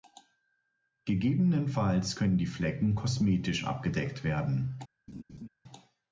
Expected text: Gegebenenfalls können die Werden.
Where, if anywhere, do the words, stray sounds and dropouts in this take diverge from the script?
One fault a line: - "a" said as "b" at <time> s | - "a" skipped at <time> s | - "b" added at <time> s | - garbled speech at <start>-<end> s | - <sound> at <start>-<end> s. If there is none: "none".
- "Flecken kosmetisch abgedeckt" added at 2.4 s
- laugh at 5.1-5.5 s